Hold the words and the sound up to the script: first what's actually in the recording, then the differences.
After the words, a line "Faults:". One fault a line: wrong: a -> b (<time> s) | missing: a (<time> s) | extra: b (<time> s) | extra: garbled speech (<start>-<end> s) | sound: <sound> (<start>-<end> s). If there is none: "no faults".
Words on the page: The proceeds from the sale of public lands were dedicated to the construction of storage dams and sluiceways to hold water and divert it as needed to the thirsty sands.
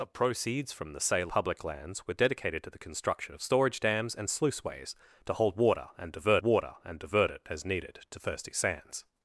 The proceeds from the sale public lands were dedicated to the construction of storage dams and sluiceways to hold water and divert water and divert it as needed to thirsty sands.
Faults:
missing: of (1.3 s)
extra: water and divert (6.4 s)
missing: the (8.2 s)